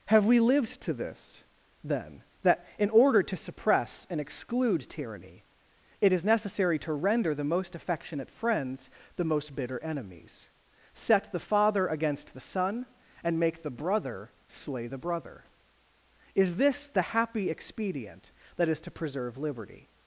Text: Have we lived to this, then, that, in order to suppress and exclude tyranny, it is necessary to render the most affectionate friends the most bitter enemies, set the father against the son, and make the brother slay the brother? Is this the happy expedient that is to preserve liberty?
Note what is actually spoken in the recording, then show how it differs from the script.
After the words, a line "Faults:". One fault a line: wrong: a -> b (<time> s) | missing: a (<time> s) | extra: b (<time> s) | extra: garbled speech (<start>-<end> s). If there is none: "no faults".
Have we lived to this, then, that, in order to suppress and exclude tyranny, it is necessary to render the most affectionate friends the most bitter enemies, set the father against the son, and make the brother slay the brother? Is this the happy expedient that is to preserve liberty?
Faults:
no faults